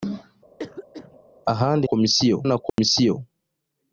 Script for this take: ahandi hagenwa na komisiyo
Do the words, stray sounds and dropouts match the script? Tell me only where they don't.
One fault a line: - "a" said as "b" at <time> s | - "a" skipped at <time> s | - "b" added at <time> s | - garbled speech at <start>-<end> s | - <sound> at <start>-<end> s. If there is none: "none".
- cough at 0.6-1.2 s
- "hagenwa" said as "komisiyo" at 1.9 s
- dropout at 2.7-2.8 s